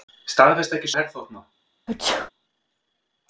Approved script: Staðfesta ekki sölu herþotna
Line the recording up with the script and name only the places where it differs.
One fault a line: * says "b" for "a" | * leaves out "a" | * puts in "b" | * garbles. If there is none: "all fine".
* leaves out "sölu"